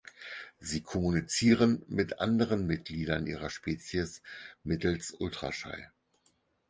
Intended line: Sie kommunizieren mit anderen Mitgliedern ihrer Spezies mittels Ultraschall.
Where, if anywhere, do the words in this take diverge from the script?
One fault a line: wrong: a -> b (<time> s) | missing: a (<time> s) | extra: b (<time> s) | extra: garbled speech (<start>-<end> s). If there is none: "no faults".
no faults